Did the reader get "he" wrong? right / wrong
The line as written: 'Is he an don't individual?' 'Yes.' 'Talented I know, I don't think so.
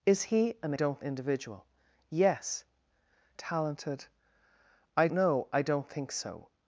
right